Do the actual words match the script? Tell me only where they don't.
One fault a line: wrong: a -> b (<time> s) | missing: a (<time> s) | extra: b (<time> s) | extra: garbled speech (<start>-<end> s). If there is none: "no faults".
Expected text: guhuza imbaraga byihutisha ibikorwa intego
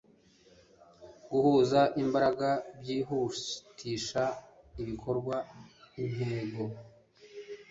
no faults